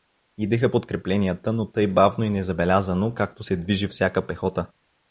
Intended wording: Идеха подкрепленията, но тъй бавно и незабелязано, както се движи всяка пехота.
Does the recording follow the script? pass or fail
pass